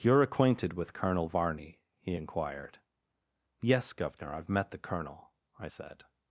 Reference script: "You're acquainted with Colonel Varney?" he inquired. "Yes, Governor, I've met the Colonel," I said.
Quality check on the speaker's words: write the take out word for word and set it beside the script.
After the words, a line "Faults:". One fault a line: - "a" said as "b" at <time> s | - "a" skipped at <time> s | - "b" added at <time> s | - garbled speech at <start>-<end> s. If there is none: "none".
"You're acquainted with Colonel Varney?" he inquired. "Yes, Governor, I've met the Colonel," I said.
Faults:
none